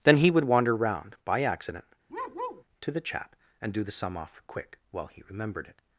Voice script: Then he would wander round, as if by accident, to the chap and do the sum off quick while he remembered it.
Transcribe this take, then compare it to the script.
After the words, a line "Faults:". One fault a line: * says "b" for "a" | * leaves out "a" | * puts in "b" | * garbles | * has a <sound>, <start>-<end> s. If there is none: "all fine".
Then he would wander round, by accident, to the chap and do the sum off quick while he remembered it.
Faults:
* leaves out "as if"
* has a bark, 2.1-2.6 s